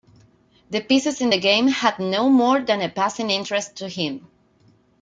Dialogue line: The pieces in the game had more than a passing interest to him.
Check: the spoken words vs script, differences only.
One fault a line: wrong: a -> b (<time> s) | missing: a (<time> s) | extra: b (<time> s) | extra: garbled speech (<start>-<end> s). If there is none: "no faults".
extra: no (2.0 s)